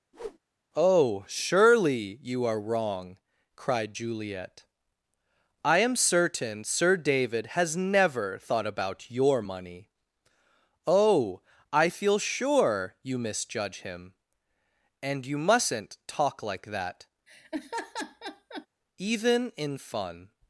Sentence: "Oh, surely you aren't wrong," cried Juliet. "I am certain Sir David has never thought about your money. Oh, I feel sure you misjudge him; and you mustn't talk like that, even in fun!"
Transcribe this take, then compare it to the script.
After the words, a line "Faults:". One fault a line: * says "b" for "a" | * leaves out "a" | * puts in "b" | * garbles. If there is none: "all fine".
"Oh, surely you are wrong," cried Juliet. "I am certain Sir David has never thought about your money. Oh, I feel sure you misjudge him; and you mustn't talk like that, even in fun!"
Faults:
* says "are" for "aren't"